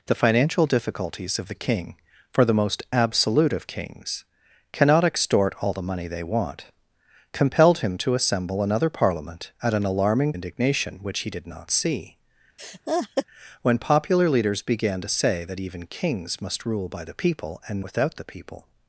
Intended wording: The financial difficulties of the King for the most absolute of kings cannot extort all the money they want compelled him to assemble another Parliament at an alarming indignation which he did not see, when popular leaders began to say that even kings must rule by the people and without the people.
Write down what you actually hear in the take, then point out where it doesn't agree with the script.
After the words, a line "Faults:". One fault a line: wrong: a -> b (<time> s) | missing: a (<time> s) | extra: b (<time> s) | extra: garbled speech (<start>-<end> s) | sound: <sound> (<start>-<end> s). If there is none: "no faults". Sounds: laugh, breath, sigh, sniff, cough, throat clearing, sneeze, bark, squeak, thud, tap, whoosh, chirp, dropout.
The financial difficulties of the King for the most absolute of kings cannot extort all the money they want compelled him to assemble another Parliament at an alarming indignation which he did not see, when popular leaders began to say that even kings must rule by the people and without the people.
Faults:
sound: laugh (12.6-13.3 s)